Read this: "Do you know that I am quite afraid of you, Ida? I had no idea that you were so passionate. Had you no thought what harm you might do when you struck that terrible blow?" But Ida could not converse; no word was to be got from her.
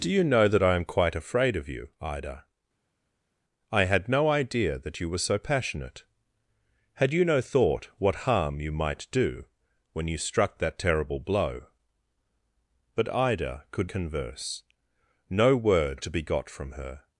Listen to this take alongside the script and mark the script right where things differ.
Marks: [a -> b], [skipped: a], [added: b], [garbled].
"Do you know that I am quite afraid of you, Ida? I had no idea that you were so passionate. Had you no thought what harm you might do when you struck that terrible blow?" But Ida could [skipped: not] converse; no word [skipped: was] to be got from her.